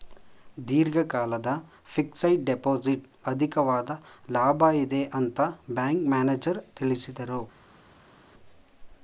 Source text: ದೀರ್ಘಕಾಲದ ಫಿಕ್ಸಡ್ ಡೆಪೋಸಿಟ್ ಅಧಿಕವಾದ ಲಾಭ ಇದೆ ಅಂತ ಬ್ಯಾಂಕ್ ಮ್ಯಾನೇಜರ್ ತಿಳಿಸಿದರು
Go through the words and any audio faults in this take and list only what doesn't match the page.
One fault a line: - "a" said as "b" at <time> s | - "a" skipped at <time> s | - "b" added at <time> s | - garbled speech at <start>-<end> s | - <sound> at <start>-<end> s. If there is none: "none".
none